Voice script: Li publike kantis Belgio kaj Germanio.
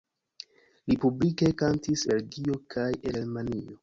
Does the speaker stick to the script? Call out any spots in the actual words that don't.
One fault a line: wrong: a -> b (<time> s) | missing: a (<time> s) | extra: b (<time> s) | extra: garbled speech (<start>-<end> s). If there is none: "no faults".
no faults